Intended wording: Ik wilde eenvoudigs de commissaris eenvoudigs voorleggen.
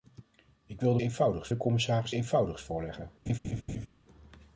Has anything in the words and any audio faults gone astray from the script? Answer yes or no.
yes